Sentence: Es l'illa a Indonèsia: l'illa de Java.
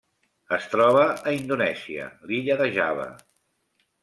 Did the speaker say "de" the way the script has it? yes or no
yes